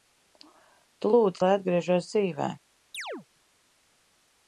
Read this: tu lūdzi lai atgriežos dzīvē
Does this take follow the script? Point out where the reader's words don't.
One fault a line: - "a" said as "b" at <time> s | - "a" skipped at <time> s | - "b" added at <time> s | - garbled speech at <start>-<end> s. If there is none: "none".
none